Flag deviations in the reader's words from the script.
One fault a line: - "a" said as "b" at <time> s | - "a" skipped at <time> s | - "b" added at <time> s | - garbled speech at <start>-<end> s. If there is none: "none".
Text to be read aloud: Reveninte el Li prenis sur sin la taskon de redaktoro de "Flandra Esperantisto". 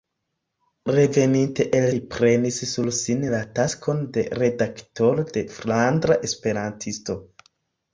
none